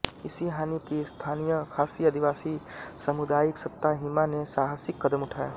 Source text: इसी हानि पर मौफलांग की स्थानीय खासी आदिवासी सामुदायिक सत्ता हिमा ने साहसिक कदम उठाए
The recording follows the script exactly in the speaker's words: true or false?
false